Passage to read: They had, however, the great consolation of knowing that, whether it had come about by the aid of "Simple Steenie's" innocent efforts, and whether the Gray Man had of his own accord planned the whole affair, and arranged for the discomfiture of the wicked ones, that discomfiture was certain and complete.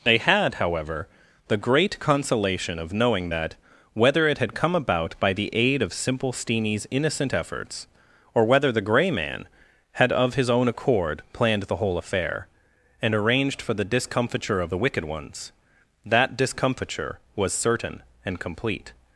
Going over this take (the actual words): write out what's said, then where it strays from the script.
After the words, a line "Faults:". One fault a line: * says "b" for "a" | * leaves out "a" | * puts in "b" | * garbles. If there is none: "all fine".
They had, however, the great consolation of knowing that, whether it had come about by the aid of "Simple Steenie's" innocent efforts, or whether the Gray Man had of his own accord planned the whole affair, and arranged for the discomfiture of the wicked ones, that discomfiture was certain and complete.
Faults:
* says "or" for "and"